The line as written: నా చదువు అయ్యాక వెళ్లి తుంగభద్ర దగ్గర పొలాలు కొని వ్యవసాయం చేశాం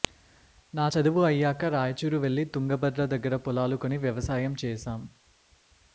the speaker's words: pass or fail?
fail